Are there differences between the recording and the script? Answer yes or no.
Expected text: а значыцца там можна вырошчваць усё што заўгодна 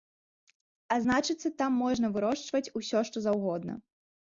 no